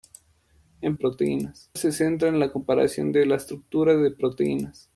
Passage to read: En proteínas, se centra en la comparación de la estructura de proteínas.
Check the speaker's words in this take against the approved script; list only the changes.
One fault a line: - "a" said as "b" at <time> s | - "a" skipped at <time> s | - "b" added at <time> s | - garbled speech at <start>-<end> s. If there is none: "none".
none